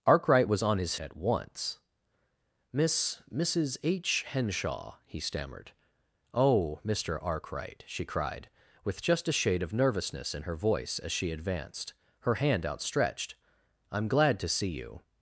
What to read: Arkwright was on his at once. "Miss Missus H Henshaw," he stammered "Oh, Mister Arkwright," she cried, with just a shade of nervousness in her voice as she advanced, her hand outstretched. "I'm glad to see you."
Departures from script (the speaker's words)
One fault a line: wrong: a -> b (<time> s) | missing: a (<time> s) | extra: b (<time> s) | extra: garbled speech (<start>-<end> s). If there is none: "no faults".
no faults